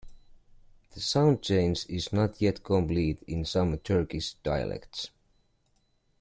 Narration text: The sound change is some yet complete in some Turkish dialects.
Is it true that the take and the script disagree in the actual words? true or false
true